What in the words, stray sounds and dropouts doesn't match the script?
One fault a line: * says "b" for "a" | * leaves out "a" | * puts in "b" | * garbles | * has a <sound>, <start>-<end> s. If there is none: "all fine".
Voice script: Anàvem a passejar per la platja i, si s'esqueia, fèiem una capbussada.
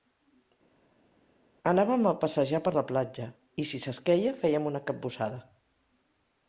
all fine